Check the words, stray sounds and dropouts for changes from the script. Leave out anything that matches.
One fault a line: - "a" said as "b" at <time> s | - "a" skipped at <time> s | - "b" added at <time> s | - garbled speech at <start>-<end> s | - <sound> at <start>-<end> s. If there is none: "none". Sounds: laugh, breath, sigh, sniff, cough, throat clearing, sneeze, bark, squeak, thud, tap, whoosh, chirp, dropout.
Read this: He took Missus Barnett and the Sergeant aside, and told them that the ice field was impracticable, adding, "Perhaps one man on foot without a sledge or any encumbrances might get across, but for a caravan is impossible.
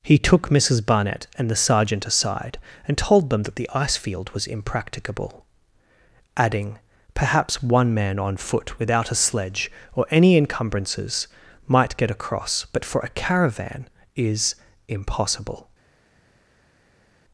none